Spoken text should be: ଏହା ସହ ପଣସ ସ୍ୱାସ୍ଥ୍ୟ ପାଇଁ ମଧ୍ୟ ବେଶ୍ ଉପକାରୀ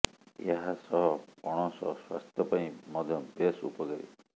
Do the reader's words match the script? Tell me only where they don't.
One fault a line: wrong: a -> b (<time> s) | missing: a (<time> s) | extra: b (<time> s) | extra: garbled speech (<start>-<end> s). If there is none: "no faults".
no faults